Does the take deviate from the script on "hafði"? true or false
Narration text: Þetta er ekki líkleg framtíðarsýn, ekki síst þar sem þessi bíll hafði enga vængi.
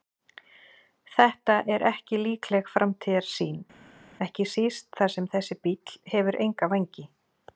true